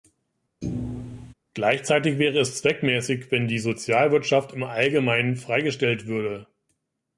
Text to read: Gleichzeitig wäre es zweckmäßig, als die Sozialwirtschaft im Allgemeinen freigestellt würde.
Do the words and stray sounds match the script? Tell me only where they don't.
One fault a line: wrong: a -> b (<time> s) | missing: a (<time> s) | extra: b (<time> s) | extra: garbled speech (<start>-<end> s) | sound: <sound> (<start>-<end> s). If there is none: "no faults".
sound: thud (0.6-1.3 s)
wrong: als -> wenn (3.3 s)